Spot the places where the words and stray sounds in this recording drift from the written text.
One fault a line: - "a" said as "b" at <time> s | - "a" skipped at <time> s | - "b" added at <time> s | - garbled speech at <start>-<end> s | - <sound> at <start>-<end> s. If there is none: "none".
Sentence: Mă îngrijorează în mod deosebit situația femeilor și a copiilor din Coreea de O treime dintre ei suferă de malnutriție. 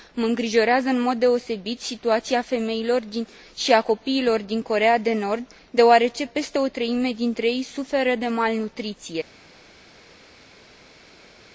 - "Nord deoarece peste" added at 5.1 s